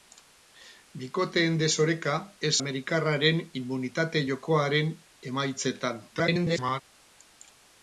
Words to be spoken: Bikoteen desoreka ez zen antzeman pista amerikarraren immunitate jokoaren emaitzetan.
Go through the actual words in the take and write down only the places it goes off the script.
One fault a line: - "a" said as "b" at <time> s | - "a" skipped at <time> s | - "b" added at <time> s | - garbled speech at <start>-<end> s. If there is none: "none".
- "zen antzeman pista" skipped at 2.5 s
- garbled speech at 6.1-6.8 s